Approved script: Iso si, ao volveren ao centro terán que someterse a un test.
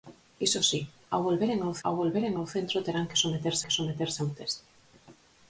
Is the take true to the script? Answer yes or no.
no